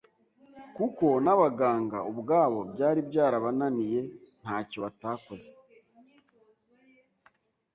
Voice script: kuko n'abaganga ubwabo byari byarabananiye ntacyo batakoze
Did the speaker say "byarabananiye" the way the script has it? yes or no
yes